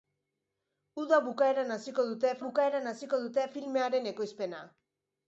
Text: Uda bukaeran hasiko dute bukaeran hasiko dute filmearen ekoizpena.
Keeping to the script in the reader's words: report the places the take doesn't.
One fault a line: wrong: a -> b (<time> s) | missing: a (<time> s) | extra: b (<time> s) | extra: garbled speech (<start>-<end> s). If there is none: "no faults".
no faults